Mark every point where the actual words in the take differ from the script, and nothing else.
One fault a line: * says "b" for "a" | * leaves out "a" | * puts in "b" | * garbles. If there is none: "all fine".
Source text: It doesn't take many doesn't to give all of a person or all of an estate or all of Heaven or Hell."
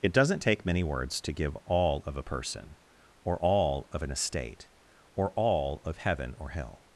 * says "words" for "doesn't"